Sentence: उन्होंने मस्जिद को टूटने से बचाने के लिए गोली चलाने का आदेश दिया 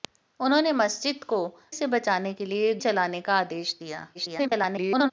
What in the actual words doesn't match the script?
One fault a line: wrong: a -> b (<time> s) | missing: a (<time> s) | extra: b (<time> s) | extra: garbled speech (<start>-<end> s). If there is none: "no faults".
missing: टूटने (1.4 s)
missing: गोली (2.7 s)
extra: garbled speech (4.1-5.1 s)